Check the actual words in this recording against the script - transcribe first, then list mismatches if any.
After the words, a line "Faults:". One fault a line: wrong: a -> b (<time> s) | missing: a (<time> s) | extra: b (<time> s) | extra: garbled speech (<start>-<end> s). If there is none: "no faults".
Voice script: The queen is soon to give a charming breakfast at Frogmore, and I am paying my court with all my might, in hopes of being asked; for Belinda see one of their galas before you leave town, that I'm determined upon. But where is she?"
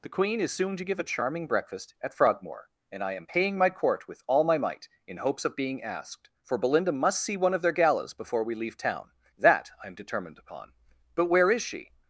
The queen is soon to give a charming breakfast at Frogmore, and I am paying my court with all my might, in hopes of being asked; for Belinda must see one of their galas before we leave town, that I'm determined upon. But where is she?"
Faults:
extra: must (6.9 s)
wrong: you -> we (8.4 s)